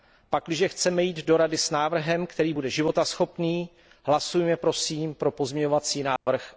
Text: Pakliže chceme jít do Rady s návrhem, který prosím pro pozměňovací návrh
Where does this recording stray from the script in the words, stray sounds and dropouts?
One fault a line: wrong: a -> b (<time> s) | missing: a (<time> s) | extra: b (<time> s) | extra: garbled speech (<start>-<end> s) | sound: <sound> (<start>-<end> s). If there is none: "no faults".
extra: bude životaschopný hlasujme (2.5 s)
sound: dropout (6.2-6.3 s)